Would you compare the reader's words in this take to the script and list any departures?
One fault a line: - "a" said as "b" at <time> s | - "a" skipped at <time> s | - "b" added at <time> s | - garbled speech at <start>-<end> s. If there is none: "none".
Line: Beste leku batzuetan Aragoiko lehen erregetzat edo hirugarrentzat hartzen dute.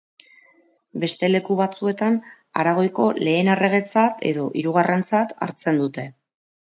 none